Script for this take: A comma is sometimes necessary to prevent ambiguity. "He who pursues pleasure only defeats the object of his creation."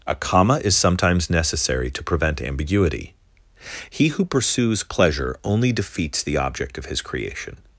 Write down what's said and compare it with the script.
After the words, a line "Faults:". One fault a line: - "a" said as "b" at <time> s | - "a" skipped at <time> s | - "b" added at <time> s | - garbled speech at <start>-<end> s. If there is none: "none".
A comma is sometimes necessary to prevent ambiguity. "He who pursues pleasure only defeats the object of his creation."
Faults:
none